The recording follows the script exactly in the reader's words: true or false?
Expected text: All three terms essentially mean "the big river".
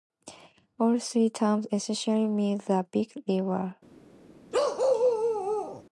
true